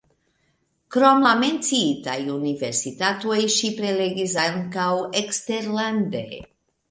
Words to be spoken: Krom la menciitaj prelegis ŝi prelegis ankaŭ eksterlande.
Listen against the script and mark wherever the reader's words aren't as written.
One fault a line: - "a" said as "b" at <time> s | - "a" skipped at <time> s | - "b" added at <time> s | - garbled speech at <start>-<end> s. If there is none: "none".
- "prelegis" said as "universitatoj" at 2.3 s